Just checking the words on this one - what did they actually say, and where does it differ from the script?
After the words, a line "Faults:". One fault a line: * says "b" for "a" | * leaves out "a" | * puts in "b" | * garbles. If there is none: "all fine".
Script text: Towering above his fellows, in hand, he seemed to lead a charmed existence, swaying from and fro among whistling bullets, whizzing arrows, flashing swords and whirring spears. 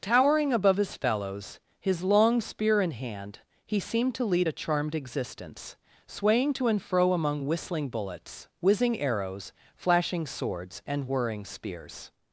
Towering above his fellows, his long spear in hand, he seemed to lead a charmed existence, swaying to and fro among whistling bullets, whizzing arrows, flashing swords and whirring spears.
Faults:
* puts in "his long spear"
* says "to" for "from"